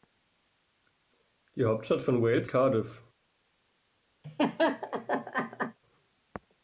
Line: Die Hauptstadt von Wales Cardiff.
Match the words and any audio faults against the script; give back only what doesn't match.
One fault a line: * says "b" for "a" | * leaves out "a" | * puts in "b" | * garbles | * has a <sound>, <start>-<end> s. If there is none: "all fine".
* has a laugh, 4.2-5.8 s